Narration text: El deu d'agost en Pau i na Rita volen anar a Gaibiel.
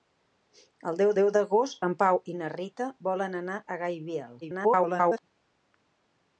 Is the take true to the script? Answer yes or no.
no